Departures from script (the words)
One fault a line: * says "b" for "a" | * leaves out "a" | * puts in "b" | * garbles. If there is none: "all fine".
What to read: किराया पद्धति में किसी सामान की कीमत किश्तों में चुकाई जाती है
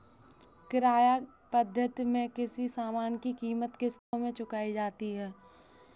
all fine